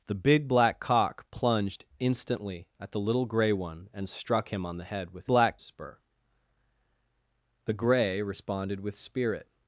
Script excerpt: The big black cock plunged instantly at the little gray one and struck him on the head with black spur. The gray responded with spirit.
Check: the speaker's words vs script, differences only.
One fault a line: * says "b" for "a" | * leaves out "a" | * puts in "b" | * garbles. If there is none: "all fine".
all fine